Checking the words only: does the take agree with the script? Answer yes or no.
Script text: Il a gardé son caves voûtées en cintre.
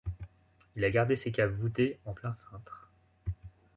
no